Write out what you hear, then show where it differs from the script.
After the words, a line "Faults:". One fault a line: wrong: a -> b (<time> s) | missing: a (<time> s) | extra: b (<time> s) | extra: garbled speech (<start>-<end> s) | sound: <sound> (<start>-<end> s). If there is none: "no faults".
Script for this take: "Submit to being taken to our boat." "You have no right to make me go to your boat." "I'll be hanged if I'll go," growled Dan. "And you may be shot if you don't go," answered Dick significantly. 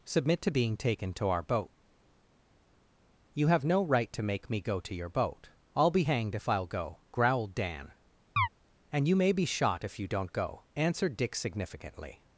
"Submit to being taken to our boat." "You have no right to make me go to your boat." "I'll be hanged if I'll go," growled Dan. "And you may be shot if you don't go," answered Dick significantly.
Faults:
sound: chirp (8.4-8.5 s)